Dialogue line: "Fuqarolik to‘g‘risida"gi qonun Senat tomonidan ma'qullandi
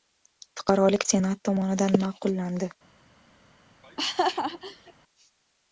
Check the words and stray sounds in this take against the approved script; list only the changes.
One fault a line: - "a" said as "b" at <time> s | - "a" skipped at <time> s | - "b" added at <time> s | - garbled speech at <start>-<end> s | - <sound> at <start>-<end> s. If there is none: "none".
- "to‘g‘risida"gi qonun" skipped at 1.1 s
- laugh at 3.8-4.9 s